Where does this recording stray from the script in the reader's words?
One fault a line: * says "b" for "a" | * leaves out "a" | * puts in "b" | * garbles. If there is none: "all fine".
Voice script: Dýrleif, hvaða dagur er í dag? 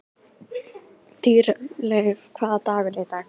all fine